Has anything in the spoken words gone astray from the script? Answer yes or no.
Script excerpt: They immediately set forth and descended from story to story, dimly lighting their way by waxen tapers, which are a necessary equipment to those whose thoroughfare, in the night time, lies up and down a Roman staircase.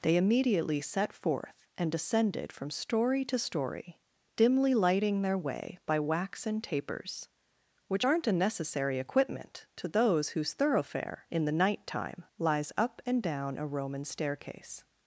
yes